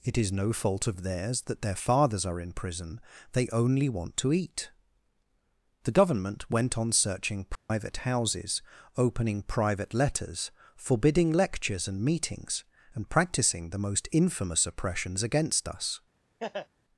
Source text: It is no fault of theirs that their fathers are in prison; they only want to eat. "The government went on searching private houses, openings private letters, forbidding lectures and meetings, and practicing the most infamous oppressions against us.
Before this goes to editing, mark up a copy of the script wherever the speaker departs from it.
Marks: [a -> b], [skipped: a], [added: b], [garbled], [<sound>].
It is no fault of theirs that their fathers are in prison; they only want to eat. "The government went on searching private [dropout] houses, [openings -> opening] private letters, forbidding lectures and meetings, and practicing the most infamous oppressions against us. [laugh]